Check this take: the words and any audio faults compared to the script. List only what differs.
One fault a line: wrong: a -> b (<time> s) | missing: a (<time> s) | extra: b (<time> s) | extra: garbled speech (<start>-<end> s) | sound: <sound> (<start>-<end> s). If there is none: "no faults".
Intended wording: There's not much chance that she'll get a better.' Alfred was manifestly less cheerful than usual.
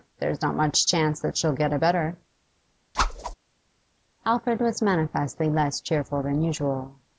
sound: whoosh (2.9-3.3 s)